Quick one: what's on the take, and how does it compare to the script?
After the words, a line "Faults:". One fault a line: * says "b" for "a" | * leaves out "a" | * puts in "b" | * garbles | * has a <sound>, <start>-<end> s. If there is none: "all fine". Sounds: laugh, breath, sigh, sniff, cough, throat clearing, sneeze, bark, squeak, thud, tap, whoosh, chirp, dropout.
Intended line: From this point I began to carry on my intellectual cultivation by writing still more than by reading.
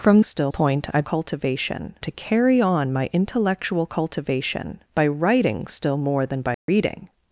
From still point I cultivation to carry on my intellectual cultivation by writing still more than by reading.
Faults:
* says "still" for "this"
* says "cultivation" for "began"
* has a dropout, 6.5-6.7 s